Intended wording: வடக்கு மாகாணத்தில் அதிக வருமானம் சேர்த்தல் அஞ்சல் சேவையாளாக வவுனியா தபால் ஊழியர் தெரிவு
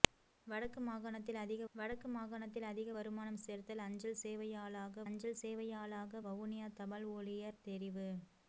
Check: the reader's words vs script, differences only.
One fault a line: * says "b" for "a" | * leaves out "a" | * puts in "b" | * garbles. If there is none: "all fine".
* puts in "வடக்கு மாகாணத்தில் அதிக"
* puts in "அஞ்சல் சேவையாளாக"